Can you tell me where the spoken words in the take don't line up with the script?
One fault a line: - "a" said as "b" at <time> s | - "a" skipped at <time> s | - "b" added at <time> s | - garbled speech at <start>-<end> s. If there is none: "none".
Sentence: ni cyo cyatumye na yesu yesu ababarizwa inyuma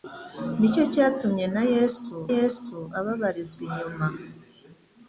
none